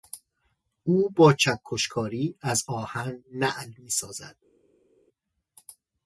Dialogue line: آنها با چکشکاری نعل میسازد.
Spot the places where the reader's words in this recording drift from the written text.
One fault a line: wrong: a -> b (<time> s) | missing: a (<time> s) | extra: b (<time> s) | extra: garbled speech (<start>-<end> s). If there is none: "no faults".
wrong: آنها -> او (0.8 s)
extra: از آهن (2.4 s)